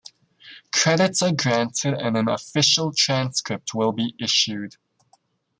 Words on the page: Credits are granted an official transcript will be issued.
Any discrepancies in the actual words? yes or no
yes